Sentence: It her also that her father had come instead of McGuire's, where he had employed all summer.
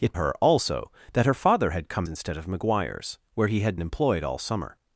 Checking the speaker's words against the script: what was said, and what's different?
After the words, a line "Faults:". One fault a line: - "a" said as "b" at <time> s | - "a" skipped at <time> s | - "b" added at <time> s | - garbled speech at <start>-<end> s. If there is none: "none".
It her also that her father had come instead of McGuire's, where he had employed all summer.
Faults:
none